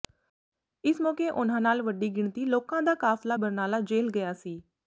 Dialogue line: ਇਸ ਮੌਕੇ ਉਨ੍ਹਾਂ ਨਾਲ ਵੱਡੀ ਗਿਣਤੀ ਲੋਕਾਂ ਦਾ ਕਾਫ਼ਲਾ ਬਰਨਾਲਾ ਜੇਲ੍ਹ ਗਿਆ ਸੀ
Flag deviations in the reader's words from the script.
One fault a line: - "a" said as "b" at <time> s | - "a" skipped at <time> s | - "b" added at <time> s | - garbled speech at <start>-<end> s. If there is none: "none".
none